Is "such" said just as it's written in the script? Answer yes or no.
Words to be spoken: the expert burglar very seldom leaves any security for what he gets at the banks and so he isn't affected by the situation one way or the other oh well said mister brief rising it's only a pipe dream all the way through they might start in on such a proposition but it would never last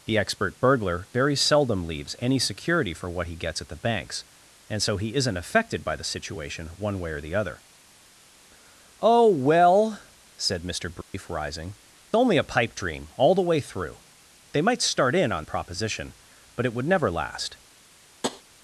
no